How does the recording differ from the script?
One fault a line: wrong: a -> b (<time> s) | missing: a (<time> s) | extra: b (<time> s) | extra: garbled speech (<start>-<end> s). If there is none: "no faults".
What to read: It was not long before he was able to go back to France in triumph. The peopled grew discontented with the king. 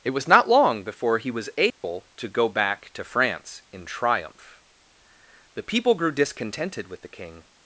wrong: peopled -> people (5.6 s)